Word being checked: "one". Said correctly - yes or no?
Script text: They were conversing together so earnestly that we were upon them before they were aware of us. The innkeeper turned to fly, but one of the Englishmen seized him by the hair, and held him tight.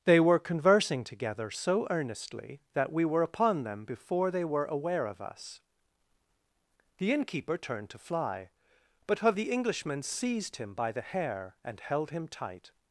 no